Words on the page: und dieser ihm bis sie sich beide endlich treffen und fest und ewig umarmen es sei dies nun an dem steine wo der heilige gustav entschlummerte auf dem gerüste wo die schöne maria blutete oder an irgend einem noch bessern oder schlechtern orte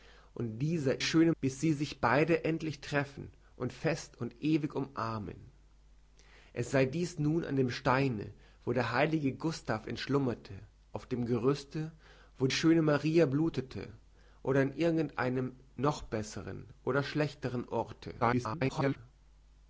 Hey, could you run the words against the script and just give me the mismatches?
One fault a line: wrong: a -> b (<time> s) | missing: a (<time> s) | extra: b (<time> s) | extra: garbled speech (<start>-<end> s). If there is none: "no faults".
wrong: ihm -> schöne (1.0 s)
missing: die (12.5 s)
extra: garbled speech (18.2-19.0 s)